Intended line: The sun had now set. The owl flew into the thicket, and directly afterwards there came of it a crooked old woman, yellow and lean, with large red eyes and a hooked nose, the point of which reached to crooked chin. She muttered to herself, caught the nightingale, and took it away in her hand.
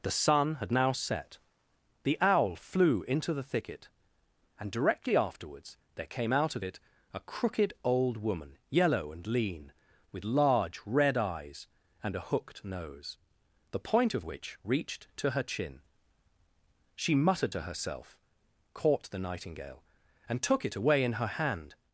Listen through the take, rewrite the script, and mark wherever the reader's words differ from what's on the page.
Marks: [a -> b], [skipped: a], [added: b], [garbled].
The sun had now set. The owl flew into the thicket, and directly afterwards there came [added: out] of it a crooked old woman, yellow and lean, with large red eyes and a hooked nose, the point of which reached to [crooked -> her] chin. She muttered to herself, caught the nightingale, and took it away in her hand.